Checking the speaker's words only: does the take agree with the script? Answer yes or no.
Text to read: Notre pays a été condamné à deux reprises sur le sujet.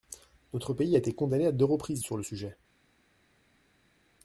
yes